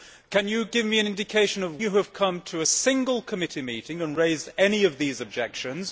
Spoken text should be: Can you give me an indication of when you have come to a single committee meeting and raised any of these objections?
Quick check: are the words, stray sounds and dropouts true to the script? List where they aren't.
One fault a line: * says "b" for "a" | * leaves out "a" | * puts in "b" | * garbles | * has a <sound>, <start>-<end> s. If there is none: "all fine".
* leaves out "when"